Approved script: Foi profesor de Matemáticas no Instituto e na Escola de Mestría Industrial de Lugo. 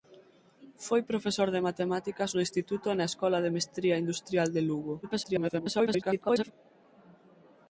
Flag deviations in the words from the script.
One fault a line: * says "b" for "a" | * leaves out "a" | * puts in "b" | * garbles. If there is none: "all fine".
* garbles